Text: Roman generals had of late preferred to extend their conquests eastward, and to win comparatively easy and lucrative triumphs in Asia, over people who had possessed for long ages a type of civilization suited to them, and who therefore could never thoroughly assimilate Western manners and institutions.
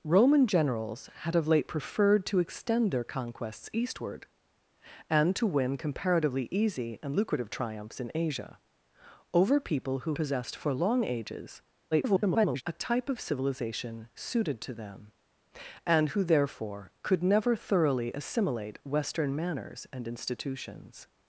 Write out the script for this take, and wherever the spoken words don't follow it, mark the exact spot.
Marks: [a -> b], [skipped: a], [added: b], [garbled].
Roman generals had of late preferred to extend their conquests eastward, and to win comparatively easy and lucrative triumphs in Asia, over people who [skipped: had] possessed for long ages [garbled] a type of civilization suited to them, and who therefore could never thoroughly assimilate Western manners and institutions.